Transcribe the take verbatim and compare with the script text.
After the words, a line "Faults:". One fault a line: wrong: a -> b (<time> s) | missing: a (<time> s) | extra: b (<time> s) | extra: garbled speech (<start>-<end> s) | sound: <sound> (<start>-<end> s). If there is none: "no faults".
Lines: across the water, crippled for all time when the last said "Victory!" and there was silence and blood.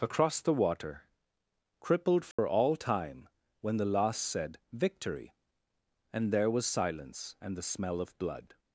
across the water, crippled for all time when the last said "Victory!" and there was silence and the smell of blood.
Faults:
sound: dropout (2.3-2.4 s)
extra: the smell of (7.6 s)